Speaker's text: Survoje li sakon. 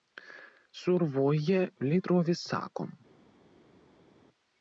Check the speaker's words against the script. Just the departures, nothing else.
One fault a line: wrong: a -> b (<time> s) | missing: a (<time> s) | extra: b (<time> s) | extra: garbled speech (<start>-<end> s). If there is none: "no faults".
extra: trovis (2.1 s)